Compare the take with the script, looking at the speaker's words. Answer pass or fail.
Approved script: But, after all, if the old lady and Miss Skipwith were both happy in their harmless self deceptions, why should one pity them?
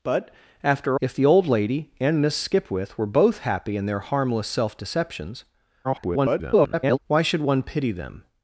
fail